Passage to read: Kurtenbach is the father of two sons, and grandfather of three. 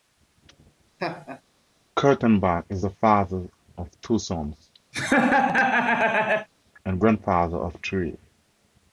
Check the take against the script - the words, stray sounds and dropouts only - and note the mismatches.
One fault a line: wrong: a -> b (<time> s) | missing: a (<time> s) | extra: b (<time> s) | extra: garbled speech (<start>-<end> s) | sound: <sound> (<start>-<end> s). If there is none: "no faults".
sound: laugh (1.0-1.4 s)
sound: laugh (4.9-6.5 s)